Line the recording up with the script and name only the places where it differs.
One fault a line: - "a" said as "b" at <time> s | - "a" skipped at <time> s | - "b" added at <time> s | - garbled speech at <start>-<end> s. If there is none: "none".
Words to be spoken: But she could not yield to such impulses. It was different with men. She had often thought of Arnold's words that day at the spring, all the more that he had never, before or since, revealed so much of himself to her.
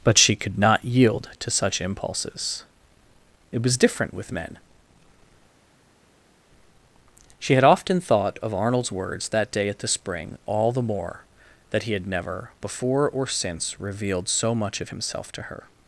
none